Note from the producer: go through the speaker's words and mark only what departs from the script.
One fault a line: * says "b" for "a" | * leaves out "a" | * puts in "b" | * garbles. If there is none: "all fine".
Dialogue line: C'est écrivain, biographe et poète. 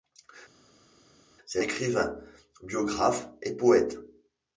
all fine